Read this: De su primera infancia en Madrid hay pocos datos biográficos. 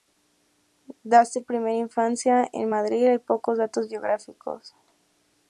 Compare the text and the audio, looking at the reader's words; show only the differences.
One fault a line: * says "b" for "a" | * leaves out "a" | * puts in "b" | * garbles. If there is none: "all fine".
all fine